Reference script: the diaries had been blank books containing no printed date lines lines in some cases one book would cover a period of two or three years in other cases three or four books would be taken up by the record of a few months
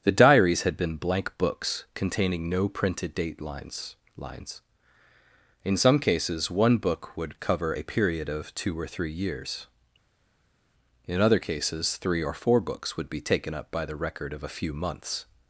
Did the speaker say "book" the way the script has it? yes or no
yes